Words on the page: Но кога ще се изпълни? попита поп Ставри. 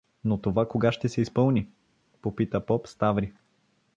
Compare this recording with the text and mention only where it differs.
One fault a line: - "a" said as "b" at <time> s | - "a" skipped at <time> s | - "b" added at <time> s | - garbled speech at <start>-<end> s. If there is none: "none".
- "това" added at 0.4 s